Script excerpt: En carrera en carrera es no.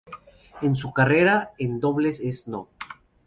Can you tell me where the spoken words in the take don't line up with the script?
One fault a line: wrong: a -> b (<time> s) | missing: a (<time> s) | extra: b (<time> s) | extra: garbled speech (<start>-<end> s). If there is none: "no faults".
extra: su (0.8 s)
wrong: carrera -> dobles (1.8 s)